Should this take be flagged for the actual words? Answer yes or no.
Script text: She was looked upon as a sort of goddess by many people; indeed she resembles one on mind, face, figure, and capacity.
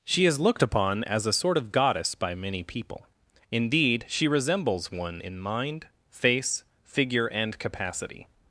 yes